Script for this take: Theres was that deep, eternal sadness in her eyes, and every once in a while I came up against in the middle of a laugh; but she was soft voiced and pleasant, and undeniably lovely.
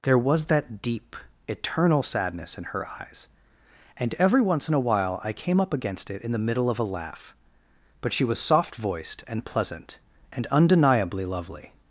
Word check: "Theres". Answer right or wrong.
wrong